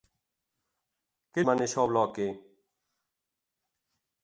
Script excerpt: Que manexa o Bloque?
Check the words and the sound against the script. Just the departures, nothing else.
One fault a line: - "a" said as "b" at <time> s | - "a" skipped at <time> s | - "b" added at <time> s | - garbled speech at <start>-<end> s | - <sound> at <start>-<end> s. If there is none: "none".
none